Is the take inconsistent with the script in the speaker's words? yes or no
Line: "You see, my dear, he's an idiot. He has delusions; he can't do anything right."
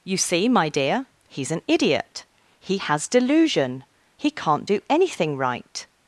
yes